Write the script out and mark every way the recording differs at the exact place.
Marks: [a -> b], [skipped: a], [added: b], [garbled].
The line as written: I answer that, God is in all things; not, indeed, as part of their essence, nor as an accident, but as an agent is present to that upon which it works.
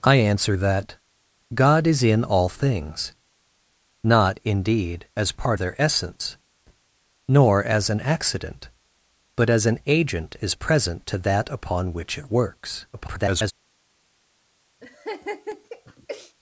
I answer that, God is in all things; not, indeed, as part [skipped: of] their essence, nor as an accident, but as an agent is present to that upon which it works. [garbled]